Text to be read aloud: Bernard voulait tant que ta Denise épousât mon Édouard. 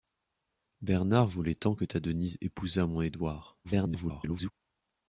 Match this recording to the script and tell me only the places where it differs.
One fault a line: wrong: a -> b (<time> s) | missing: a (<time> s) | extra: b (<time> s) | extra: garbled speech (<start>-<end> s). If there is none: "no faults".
extra: garbled speech (3.6-4.5 s)